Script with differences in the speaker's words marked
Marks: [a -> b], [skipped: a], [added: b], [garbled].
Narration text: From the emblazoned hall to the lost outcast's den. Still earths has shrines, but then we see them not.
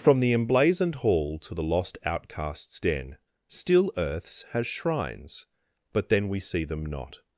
From the emblazoned hall to the lost outcast's den. Still earths has shrines, but then we see them not.